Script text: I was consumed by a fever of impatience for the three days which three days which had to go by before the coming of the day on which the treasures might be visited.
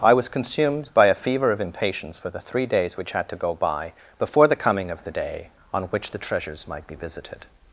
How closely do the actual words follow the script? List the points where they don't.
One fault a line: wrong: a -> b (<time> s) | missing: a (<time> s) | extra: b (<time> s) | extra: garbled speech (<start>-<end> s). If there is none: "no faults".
missing: three days which (3.1 s)